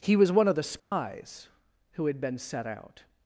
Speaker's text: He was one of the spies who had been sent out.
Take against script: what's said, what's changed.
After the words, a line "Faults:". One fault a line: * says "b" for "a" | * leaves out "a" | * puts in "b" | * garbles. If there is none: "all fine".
He was one of the spies who had been set out.
Faults:
* says "set" for "sent"